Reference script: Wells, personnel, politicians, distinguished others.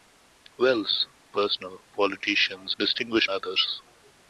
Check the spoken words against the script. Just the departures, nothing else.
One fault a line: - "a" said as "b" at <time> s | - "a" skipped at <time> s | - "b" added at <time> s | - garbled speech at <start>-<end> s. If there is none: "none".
none